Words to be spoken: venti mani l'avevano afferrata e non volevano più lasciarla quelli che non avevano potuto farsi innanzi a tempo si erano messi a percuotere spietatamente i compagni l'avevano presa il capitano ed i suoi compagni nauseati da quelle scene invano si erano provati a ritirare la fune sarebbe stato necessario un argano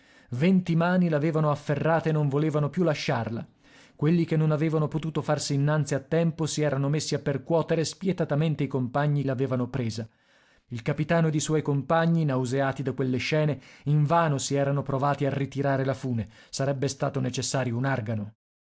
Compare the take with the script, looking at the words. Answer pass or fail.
pass